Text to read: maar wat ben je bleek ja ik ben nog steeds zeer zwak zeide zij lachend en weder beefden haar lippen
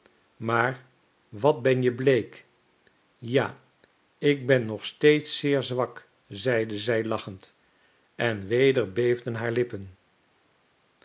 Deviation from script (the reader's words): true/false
false